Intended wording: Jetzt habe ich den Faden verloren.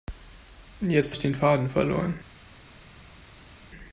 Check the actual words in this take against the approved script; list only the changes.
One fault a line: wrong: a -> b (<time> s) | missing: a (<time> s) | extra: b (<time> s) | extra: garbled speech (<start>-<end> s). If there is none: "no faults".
missing: habe (1.1 s)